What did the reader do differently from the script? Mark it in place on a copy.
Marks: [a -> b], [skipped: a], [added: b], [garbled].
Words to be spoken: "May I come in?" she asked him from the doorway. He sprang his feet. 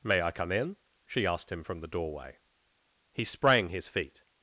"May I come in?" she asked him from the doorway. He sprang his feet.